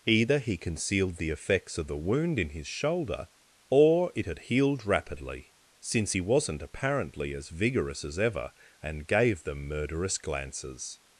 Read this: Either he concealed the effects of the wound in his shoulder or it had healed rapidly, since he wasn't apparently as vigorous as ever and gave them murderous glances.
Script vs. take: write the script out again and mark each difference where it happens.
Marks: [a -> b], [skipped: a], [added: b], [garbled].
Either he concealed the effects of the wound in his shoulder or it had healed rapidly, since he wasn't apparently as vigorous as ever and gave them murderous glances.